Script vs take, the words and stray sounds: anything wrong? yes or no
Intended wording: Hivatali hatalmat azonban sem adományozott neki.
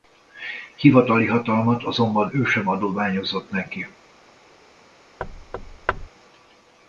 yes